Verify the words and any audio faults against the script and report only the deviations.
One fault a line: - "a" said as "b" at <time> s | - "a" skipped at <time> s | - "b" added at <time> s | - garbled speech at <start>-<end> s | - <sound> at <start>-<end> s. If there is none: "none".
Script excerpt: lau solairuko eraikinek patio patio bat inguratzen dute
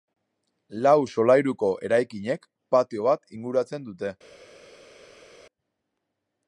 - "patio" skipped at 3.0 s